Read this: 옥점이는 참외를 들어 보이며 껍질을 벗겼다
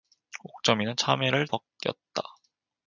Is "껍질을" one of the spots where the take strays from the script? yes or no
yes